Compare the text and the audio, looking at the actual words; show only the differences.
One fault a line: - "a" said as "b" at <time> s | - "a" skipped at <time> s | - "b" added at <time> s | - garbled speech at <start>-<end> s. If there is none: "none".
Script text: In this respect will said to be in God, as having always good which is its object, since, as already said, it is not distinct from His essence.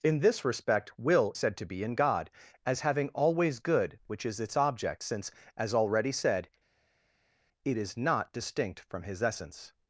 none